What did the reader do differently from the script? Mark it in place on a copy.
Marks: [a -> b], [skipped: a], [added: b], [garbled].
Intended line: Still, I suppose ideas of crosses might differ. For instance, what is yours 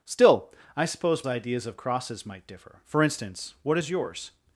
Still, I suppose ideas of crosses might differ. For instance, what is yours